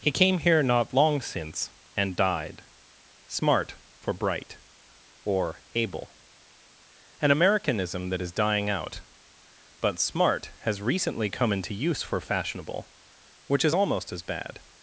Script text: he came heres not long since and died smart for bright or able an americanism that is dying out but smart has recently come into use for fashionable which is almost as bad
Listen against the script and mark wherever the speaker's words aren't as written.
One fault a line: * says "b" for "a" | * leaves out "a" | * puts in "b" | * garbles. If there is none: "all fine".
* says "here" for "heres"